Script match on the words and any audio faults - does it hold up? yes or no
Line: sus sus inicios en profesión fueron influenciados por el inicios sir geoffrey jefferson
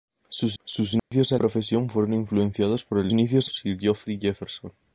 no